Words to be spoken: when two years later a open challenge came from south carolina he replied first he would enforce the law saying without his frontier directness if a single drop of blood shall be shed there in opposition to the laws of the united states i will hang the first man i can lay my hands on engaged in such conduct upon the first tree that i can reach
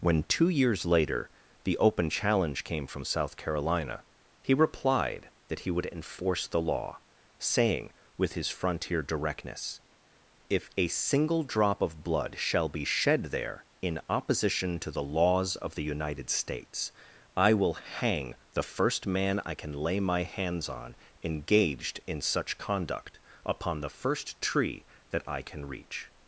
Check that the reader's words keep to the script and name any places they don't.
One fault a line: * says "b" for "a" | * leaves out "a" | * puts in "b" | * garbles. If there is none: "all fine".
* says "the" for "a"
* says "that" for "first"
* says "with" for "without"